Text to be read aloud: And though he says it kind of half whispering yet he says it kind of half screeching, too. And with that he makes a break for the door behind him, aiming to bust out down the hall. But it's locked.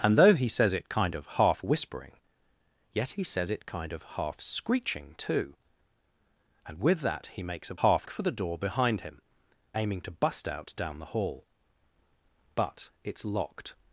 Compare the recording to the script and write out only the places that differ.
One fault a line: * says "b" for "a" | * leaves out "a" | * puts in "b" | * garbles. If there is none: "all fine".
* says "half" for "break"